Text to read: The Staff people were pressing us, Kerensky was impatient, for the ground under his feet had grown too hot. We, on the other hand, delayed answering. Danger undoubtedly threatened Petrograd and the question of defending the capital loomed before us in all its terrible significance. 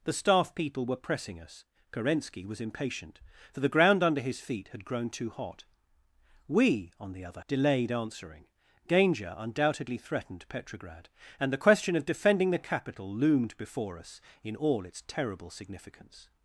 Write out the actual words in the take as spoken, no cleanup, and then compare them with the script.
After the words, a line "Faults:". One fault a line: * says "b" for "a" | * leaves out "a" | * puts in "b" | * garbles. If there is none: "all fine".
The Staff people were pressing us, Kerensky was impatient, for the ground under his feet had grown too hot. We, on the other delayed answering. Danger undoubtedly threatened Petrograd and the question of defending the capital loomed before us in all its terrible significance.
Faults:
* leaves out "hand"